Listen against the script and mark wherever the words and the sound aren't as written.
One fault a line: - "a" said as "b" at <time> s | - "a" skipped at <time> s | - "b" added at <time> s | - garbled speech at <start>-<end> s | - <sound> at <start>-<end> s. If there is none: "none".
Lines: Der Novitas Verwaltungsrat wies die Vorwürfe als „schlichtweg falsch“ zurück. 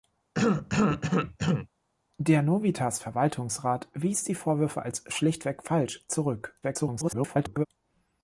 - cough at 0.3-1.7 s
- garbled speech at 6.6-7.7 s